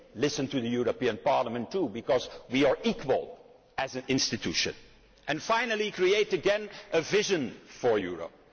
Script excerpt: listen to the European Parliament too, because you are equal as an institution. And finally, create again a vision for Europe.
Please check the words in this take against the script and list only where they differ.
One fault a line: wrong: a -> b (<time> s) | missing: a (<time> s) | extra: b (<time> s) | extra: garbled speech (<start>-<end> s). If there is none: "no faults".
wrong: you -> we (2.5 s)